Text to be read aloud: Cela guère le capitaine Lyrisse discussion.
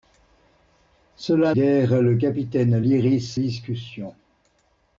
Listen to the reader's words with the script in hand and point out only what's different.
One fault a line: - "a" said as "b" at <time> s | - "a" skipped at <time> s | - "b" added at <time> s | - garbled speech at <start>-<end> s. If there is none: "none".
none